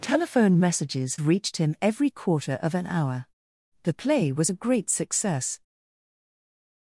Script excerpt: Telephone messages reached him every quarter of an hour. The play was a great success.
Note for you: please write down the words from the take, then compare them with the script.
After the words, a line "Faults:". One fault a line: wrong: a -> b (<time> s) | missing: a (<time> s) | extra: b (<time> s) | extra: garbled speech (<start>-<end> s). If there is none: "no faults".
Telephone messages reached him every quarter of an hour. The play was a great success.
Faults:
no faults